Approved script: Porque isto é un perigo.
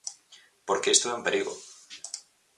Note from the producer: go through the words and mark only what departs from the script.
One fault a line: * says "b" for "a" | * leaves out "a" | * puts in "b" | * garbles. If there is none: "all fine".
all fine